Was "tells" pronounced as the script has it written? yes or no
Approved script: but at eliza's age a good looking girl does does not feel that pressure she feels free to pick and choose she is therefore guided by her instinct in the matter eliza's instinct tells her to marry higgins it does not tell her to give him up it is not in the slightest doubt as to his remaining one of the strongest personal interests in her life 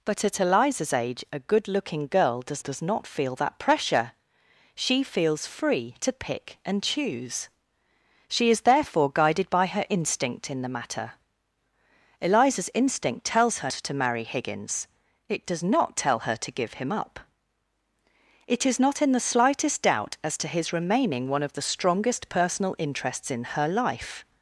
yes